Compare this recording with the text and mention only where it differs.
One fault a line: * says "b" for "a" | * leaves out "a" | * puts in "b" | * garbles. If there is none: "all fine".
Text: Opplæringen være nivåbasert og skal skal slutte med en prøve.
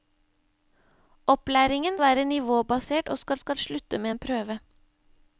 all fine